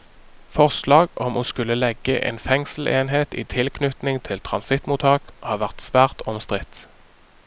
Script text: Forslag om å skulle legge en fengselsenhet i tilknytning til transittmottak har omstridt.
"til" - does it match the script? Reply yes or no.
yes